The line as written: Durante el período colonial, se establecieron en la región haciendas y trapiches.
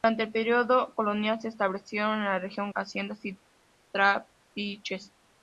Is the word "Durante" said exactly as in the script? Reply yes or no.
yes